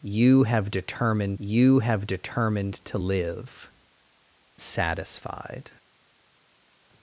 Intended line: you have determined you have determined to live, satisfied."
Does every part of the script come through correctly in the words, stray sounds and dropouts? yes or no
yes